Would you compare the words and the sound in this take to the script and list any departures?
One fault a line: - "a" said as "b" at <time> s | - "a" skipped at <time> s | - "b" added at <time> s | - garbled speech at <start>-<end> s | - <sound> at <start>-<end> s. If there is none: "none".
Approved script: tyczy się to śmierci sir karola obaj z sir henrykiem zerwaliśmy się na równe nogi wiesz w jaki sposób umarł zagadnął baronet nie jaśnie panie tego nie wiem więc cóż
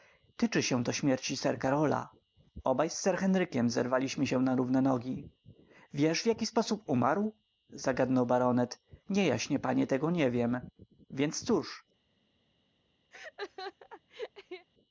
- laugh at 13.1-14.7 s